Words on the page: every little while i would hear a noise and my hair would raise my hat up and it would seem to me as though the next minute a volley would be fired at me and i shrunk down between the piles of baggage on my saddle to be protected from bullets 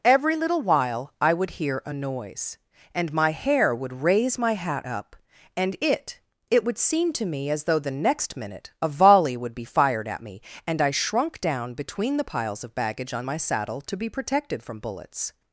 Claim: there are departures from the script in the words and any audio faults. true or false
true